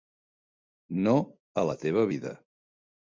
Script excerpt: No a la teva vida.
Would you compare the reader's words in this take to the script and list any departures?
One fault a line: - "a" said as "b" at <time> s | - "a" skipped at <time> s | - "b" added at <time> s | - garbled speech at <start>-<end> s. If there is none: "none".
none